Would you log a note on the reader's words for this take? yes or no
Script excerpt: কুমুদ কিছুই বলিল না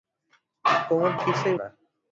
yes